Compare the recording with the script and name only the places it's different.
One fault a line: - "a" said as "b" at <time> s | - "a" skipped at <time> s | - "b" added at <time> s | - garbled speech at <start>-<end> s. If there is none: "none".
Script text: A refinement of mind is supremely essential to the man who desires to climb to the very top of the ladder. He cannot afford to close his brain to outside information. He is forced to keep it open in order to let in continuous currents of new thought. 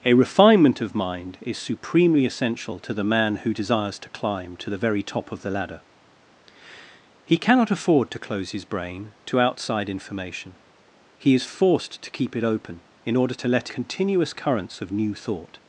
- "in" skipped at 13.7 s